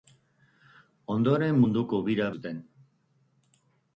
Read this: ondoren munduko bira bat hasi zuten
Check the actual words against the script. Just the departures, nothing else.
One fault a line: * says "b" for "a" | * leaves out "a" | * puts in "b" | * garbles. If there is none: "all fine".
* leaves out "bat hasi"